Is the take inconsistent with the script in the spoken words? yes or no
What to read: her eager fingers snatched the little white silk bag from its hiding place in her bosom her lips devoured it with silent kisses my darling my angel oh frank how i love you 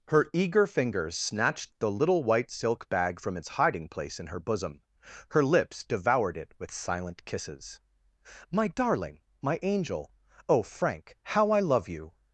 no